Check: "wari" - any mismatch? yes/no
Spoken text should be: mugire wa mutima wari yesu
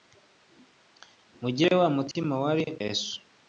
no